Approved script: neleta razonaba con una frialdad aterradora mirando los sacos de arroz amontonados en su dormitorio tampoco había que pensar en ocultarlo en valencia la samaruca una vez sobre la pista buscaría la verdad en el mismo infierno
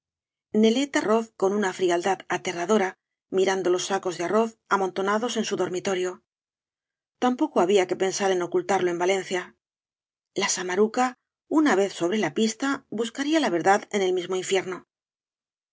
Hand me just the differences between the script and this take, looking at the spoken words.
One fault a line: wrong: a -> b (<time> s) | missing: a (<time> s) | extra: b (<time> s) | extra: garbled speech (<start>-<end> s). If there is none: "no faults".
wrong: razonaba -> arroz (1.0 s)